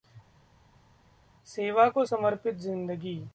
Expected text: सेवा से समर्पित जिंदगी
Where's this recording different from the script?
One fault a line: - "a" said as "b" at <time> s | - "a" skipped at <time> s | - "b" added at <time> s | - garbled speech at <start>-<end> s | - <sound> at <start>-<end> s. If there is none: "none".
- "से" said as "को" at 1.9 s